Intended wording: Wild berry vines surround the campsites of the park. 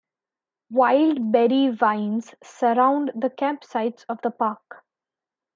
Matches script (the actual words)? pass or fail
pass